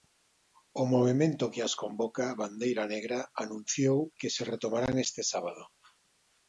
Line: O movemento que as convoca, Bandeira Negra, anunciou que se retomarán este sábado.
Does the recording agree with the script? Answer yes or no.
yes